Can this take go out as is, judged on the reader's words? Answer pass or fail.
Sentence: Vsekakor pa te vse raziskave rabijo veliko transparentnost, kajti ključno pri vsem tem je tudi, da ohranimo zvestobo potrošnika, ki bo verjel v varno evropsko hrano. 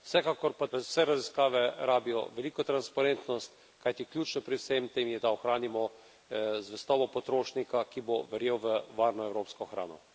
fail